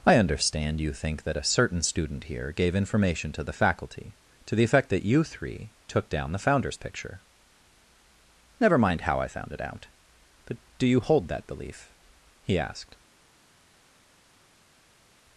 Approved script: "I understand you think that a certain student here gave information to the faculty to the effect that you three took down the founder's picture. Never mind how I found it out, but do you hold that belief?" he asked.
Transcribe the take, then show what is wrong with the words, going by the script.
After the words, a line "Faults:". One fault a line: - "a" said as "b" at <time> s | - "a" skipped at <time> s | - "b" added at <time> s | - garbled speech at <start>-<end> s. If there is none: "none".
"I understand you think that a certain student here gave information to the faculty to the effect that you three took down the founder's picture. Never mind how I found it out, but do you hold that belief?" he asked.
Faults:
none